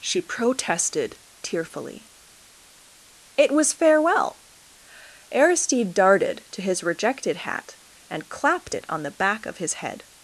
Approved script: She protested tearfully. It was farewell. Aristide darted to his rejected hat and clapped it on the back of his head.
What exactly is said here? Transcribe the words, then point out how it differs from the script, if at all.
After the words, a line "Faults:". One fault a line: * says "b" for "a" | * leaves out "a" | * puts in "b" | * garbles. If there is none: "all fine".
She protested tearfully. It was farewell. Aristide darted to his rejected hat and clapped it on the back of his head.
Faults:
all fine